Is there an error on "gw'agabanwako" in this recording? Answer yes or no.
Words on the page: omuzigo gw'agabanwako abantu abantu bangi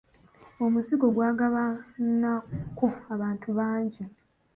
no